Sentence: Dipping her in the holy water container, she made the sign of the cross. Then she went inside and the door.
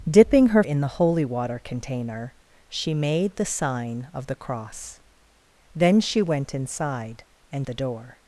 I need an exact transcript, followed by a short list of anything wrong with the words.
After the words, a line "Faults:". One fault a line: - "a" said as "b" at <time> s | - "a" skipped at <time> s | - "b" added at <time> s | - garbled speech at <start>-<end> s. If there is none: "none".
Dipping her in the holy water container, she made the sign of the cross. Then she went inside and the door.
Faults:
none